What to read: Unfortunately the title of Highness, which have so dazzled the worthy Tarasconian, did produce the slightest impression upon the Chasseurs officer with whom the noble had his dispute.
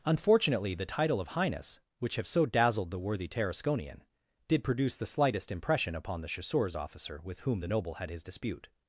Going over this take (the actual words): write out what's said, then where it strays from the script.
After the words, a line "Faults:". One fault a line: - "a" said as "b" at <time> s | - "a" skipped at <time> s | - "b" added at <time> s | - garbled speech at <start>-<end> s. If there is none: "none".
Unfortunately the title of Highness, which have so dazzled the worthy Tarasconian, did produce the slightest impression upon the Chasseurs officer with whom the noble had his dispute.
Faults:
none